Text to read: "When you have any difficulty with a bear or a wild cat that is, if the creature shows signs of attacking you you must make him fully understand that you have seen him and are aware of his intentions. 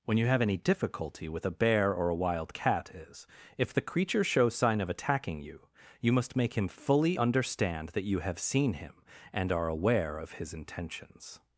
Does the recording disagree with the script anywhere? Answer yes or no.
yes